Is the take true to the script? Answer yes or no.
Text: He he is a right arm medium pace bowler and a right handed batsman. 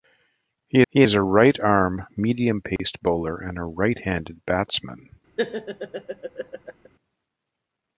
yes